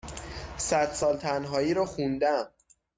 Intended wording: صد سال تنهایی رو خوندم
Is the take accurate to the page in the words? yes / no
yes